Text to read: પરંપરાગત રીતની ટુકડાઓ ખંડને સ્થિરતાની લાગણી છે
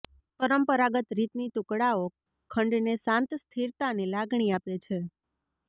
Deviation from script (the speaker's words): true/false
true